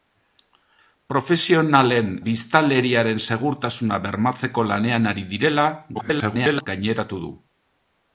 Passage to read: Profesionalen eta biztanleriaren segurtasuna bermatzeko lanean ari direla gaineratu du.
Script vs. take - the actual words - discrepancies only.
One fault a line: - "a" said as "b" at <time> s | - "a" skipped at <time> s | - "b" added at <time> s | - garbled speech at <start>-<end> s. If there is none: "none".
- "eta" skipped at 2.1 s
- garbled speech at 5.9-6.7 s